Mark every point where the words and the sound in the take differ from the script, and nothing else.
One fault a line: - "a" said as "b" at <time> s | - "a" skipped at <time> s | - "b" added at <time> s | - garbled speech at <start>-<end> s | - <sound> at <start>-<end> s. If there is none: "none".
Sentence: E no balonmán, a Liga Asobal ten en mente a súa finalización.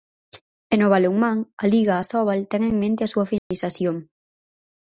- dropout at 3.4-3.5 s